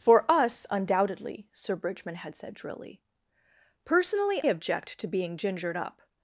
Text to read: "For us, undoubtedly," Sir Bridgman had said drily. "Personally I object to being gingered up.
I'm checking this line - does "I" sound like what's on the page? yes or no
no